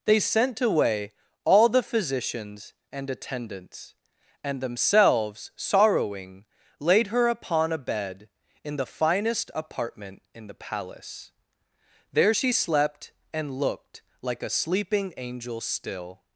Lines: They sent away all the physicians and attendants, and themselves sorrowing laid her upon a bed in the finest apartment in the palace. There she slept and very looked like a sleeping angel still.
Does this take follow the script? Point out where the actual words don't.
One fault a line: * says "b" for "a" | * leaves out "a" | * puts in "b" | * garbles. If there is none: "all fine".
* leaves out "very"